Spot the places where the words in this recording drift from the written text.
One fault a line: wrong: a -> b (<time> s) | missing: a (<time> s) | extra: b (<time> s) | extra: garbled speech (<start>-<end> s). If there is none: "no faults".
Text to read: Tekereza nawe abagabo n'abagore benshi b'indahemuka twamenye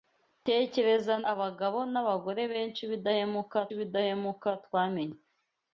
missing: nawe (1.1 s)
extra: b'indahemuka (3.8 s)